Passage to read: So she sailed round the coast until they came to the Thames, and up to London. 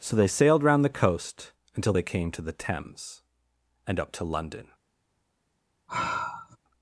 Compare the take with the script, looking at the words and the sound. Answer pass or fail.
fail